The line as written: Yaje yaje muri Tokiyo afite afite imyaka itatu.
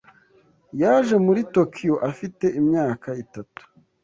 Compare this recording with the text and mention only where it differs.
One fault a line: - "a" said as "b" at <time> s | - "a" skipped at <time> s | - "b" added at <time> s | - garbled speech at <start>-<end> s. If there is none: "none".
- "yaje" skipped at 1.1 s
- "afite" skipped at 2.4 s